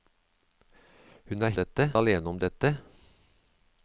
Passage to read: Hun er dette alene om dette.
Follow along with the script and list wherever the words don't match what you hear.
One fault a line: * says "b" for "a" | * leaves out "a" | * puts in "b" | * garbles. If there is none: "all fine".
all fine